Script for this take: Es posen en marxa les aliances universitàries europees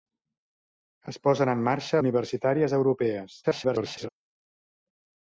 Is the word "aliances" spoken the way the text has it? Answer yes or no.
no